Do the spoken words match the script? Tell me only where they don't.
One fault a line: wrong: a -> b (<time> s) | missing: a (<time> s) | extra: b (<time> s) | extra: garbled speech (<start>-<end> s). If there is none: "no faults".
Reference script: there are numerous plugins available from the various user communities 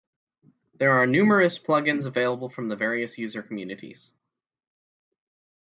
no faults